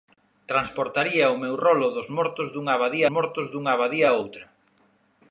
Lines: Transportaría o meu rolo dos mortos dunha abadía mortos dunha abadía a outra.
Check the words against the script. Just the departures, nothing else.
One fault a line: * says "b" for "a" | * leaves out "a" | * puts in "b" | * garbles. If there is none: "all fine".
all fine